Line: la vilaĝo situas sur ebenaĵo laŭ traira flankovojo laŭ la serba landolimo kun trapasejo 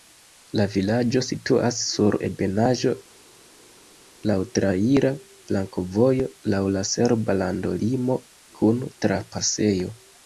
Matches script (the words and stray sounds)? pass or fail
pass